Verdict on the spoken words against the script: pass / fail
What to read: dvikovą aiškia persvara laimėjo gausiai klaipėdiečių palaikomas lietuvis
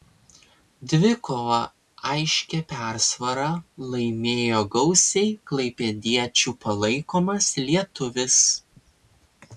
pass